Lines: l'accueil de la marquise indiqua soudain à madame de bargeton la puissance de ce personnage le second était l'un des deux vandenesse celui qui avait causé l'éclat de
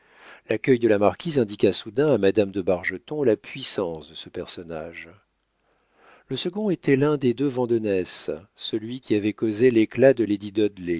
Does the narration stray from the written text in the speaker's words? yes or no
no